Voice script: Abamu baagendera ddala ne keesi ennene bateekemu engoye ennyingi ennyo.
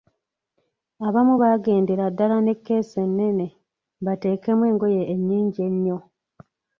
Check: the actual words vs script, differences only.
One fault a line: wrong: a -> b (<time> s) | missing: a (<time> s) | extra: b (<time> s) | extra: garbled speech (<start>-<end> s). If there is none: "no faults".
no faults